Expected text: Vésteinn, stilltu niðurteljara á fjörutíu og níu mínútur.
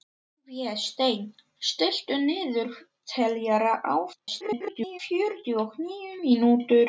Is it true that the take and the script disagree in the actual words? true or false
true